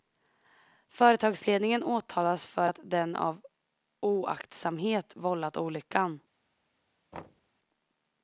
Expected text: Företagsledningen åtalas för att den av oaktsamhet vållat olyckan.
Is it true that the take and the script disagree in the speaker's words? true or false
false